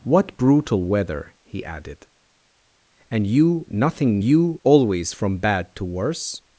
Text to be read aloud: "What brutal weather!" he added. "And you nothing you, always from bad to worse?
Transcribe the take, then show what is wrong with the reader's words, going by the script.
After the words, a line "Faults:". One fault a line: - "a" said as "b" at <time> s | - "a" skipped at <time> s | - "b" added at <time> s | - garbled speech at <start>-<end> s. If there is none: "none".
"What brutal weather!" he added. "And you nothing you, always from bad to worse?
Faults:
none